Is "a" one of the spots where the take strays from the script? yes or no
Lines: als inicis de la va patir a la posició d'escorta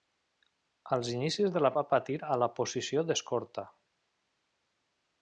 no